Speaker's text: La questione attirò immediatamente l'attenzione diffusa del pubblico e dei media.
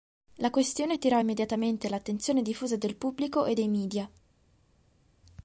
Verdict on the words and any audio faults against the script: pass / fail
pass